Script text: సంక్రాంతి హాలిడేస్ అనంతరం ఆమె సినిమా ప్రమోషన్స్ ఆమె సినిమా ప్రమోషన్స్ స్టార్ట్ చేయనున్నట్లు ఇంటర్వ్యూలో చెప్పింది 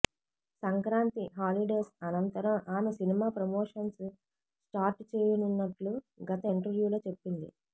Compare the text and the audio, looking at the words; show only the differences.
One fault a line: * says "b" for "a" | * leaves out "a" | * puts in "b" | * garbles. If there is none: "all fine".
* leaves out "ఆమె సినిమా ప్రమోషన్స్"
* puts in "గత"